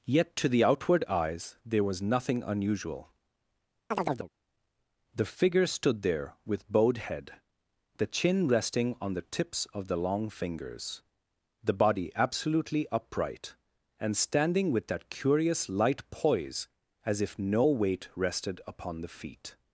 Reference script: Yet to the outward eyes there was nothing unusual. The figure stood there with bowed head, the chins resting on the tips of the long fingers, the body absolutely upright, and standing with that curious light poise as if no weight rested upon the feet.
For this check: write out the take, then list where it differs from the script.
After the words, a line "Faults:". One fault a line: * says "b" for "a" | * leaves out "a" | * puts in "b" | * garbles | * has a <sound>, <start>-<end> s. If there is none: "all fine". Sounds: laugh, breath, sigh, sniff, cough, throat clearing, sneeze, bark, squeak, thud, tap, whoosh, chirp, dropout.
Yet to the outward eyes there was nothing unusual. The figure stood there with bowed head, the chin resting on the tips of the long fingers, the body absolutely upright, and standing with that curious light poise as if no weight rested upon the feet.
Faults:
* has a chirp, 3.9-4.3 s
* says "chin" for "chins"